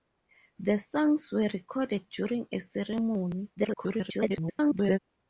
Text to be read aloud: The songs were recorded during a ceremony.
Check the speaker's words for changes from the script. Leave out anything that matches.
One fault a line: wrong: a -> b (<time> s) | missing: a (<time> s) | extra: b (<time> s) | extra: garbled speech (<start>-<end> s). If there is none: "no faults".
extra: garbled speech (3.6-5.0 s)